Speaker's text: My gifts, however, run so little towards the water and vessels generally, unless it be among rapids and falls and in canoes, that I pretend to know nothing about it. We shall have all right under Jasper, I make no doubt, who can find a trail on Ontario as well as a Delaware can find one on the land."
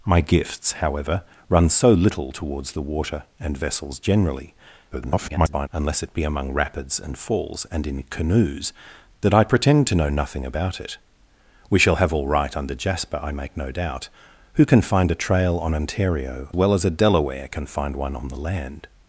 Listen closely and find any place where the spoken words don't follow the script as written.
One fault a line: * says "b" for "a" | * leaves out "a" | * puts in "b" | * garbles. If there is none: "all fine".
* garbles
* leaves out "as"